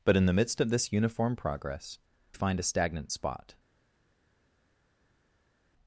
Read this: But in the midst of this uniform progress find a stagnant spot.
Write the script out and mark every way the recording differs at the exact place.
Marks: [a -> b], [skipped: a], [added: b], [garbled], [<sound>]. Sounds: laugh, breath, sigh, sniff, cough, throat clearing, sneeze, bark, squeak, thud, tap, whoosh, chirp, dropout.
But in the midst of this uniform progress find a stagnant spot.